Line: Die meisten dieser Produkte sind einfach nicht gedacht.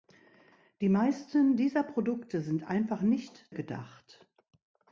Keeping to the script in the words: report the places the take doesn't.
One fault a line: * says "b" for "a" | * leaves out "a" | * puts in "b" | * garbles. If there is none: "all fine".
all fine